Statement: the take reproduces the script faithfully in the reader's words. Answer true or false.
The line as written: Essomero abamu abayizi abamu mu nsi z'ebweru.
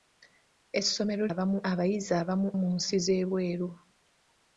true